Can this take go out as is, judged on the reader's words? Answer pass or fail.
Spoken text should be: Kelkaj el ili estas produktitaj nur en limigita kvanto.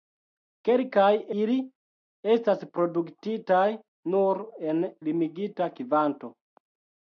fail